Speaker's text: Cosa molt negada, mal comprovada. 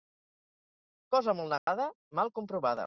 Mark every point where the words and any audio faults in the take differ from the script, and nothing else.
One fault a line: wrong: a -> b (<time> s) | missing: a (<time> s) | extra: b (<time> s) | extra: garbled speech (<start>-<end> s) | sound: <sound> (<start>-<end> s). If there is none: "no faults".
sound: dropout (1.6-1.7 s)